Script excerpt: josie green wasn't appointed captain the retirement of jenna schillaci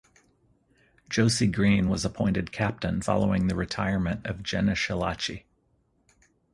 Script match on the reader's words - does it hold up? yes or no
no